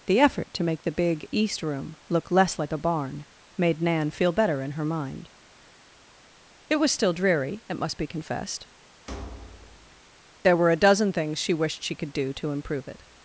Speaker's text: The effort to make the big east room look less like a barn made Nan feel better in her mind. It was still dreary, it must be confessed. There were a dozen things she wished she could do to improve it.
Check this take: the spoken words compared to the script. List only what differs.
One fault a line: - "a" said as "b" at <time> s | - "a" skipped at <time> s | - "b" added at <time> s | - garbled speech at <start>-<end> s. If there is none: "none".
none